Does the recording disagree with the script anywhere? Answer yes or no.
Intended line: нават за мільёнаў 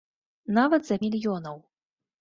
no